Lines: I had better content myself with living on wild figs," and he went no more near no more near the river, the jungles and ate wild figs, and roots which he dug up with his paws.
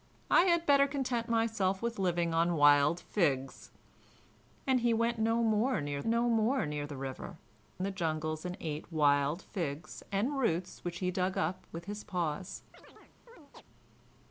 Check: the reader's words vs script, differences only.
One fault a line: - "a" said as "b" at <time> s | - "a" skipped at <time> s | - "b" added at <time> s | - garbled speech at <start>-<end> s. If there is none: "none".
none